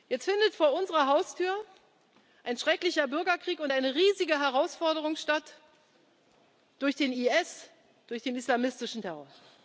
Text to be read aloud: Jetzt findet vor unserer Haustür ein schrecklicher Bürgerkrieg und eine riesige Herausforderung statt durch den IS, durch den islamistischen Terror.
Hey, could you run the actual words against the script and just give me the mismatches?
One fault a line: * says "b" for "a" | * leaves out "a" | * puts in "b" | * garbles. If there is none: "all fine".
all fine